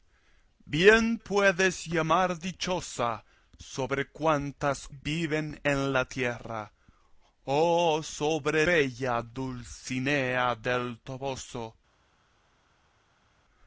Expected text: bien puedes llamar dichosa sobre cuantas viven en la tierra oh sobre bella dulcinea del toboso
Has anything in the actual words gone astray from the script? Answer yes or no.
no